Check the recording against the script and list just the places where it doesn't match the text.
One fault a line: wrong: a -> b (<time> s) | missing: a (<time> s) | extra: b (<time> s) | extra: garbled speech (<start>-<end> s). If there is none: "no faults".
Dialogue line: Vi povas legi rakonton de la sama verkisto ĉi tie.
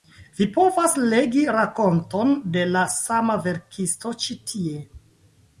no faults